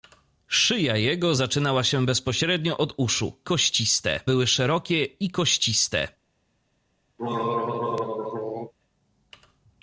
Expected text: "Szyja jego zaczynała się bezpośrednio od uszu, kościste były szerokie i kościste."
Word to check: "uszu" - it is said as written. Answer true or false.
true